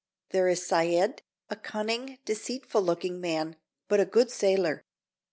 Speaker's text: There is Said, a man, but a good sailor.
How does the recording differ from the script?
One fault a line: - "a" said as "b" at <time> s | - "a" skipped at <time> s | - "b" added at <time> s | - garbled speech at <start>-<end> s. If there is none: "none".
- "cunning deceitful looking" added at 1.6 s